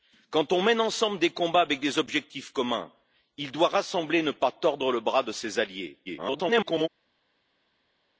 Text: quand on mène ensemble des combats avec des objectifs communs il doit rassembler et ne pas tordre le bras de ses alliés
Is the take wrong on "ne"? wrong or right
right